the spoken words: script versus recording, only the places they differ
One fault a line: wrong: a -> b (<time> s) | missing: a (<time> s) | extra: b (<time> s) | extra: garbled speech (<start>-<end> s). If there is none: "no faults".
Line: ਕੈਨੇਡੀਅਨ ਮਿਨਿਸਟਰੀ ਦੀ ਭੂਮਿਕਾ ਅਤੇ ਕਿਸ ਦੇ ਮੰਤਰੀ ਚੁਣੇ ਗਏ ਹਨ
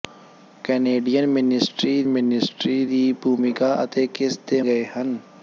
extra: ਮਿਨਿਸਟਰੀ (2.1 s)
missing: ਮੰਤਰੀ ਚੁਣੇ (4.6 s)